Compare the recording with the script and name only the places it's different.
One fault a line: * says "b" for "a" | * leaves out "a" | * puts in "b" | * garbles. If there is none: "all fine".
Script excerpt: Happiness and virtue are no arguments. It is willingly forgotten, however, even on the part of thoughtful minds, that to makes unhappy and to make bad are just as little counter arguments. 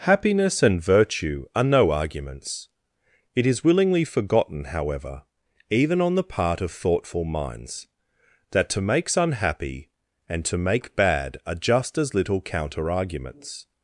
all fine